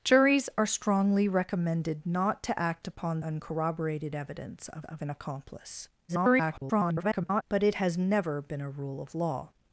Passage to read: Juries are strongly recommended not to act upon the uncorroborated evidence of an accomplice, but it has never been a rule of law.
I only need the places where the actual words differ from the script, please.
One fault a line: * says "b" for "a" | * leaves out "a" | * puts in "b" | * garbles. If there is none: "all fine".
* leaves out "the"
* puts in "of"
* garbles